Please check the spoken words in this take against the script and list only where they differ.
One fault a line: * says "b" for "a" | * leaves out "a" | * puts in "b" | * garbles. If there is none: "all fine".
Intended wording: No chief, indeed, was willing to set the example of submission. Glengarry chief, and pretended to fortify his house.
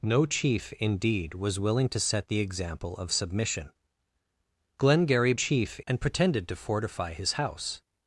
all fine